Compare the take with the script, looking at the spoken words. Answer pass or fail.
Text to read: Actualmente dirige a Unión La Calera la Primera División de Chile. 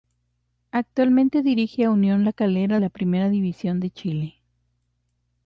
pass